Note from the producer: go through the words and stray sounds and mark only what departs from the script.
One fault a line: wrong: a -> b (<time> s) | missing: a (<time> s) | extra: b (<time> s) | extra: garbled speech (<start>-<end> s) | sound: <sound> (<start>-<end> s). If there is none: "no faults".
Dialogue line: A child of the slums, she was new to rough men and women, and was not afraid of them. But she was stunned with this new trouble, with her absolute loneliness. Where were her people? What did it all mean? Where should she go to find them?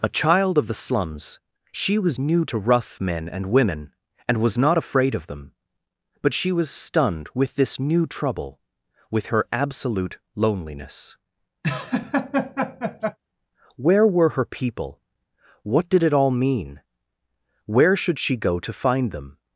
sound: laugh (11.6-13.2 s)